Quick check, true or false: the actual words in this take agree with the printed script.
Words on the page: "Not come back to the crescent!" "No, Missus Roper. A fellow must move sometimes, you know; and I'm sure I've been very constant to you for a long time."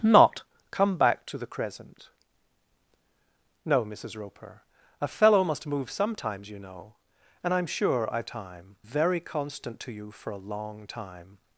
false